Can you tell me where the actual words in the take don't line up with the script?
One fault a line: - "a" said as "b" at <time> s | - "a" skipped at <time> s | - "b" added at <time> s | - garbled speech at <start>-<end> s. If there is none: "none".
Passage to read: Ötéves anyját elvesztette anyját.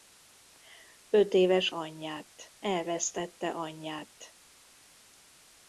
none